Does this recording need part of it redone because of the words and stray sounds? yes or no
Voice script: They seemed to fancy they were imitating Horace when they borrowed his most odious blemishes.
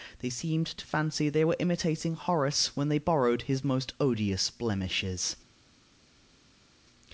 no